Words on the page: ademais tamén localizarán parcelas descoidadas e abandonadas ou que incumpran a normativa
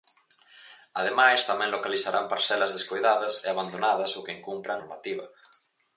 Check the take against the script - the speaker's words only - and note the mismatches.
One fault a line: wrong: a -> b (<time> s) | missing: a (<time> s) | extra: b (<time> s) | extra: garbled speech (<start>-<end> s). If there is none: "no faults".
missing: a (4.8 s)